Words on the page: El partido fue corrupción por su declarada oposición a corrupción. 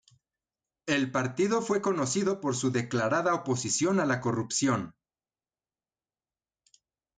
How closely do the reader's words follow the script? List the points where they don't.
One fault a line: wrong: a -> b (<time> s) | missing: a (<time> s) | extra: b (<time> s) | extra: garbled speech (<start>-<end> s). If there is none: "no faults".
wrong: corrupción -> conocido (1.8 s)
extra: la (4.1 s)